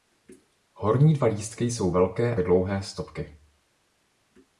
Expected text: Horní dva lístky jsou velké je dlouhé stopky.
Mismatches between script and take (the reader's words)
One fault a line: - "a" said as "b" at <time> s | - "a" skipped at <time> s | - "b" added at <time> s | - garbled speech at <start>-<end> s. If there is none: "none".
none